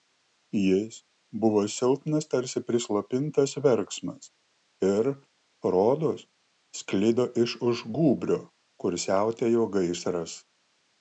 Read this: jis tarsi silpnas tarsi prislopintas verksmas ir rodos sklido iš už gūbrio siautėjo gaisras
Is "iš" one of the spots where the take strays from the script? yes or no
no